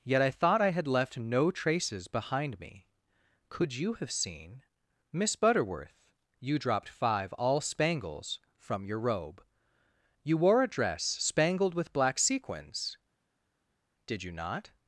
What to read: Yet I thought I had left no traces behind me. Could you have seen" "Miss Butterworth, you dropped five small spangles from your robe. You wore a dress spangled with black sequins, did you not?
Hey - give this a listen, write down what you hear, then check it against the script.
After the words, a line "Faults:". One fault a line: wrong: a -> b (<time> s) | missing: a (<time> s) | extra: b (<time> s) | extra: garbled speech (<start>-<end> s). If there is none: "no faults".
Yet I thought I had left no traces behind me. Could you have seen" "Miss Butterworth, you dropped five all spangles from your robe. You wore a dress spangled with black sequins, did you not?
Faults:
wrong: small -> all (7.3 s)